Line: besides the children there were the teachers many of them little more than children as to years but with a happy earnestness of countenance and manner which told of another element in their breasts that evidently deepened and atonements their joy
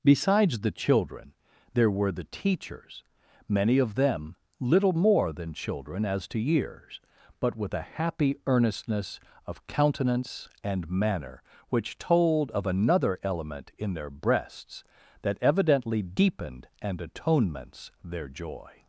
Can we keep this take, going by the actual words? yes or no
yes